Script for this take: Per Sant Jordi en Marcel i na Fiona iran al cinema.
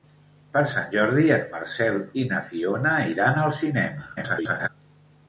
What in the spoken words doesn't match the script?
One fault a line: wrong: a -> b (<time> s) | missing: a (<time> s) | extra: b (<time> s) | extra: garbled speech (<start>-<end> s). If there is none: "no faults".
extra: garbled speech (4.2-4.7 s)